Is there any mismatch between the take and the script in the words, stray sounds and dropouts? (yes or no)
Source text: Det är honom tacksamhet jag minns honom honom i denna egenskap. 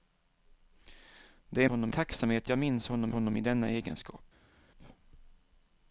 no